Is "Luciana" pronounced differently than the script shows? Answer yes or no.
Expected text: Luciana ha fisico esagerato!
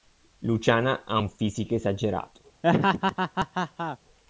no